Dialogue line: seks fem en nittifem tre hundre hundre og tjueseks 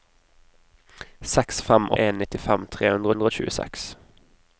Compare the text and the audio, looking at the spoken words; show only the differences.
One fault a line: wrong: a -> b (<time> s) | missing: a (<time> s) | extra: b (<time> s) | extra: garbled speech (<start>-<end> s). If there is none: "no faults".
no faults